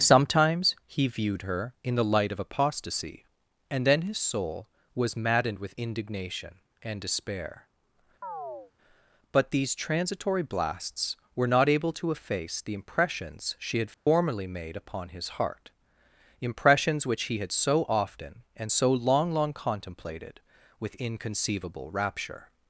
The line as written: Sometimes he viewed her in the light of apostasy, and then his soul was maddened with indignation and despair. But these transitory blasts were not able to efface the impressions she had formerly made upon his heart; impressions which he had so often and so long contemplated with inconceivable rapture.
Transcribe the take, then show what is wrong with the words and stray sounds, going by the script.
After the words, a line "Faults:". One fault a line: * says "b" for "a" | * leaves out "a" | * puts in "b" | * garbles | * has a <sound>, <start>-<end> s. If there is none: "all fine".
Sometimes he viewed her in the light of apostasy, and then his soul was maddened with indignation and despair. But these transitory blasts were not able to efface the impressions she had formerly made upon his heart; impressions which he had so often and so long long contemplated with inconceivable rapture.
Faults:
* has a chirp, 8.2-8.7 s
* has a dropout, 13.9-14.1 s
* puts in "long"